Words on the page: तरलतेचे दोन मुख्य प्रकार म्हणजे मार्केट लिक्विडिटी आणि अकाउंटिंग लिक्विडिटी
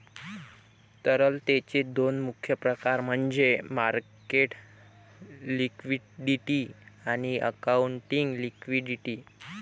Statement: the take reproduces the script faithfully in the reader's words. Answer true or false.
true